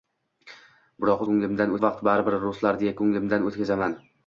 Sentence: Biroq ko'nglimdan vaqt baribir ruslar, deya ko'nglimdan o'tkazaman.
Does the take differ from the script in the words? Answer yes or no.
no